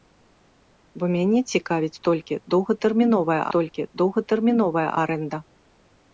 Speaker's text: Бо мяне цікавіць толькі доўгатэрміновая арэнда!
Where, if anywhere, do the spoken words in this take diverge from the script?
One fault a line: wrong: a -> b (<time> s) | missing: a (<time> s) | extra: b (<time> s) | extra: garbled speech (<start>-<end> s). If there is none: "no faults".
extra: толькі доўгатэрміновая (3.6 s)